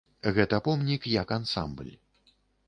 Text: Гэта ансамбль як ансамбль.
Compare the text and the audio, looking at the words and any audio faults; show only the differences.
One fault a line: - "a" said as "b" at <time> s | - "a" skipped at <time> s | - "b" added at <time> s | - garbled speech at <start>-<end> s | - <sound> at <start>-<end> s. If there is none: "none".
- "ансамбль" said as "помнік" at 0.7 s